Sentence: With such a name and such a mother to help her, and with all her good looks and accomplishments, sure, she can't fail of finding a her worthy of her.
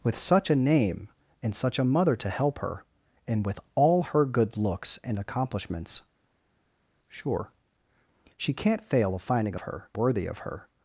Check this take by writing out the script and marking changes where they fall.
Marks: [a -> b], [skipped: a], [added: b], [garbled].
With such a name and such a mother to help her, and with all her good looks and accomplishments, sure, she can't fail of finding a her worthy of her.